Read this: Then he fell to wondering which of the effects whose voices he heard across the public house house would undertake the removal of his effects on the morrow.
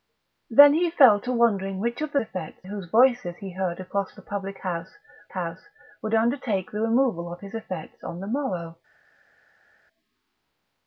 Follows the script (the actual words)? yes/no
yes